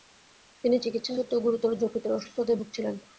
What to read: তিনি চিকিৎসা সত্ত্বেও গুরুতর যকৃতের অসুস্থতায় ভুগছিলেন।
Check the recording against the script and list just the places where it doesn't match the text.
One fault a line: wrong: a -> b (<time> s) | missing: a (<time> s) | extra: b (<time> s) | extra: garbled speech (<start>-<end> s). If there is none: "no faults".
no faults